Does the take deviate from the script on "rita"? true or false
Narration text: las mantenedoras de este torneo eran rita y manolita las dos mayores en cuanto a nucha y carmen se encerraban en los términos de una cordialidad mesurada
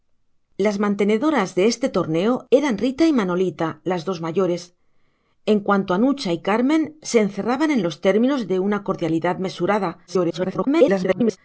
false